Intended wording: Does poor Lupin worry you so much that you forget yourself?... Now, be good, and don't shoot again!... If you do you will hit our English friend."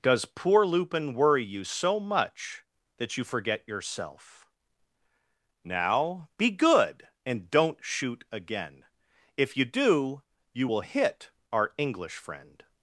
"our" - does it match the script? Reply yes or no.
yes